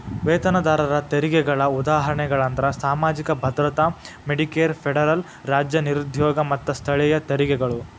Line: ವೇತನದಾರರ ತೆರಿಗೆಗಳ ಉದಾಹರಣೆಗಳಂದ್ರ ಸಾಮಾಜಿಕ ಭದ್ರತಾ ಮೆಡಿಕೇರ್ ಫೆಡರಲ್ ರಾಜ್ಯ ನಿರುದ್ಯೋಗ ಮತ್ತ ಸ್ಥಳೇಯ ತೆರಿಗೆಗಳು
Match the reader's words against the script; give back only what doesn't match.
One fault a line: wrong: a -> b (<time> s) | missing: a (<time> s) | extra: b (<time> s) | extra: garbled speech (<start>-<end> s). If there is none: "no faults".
no faults